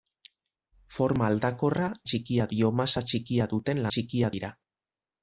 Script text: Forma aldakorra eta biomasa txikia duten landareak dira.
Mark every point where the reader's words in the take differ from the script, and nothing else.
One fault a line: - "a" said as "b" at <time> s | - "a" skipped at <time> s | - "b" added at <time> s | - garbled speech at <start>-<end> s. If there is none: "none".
- "eta" said as "txikia" at 2.1 s
- "landareak" said as "txikia" at 3.9 s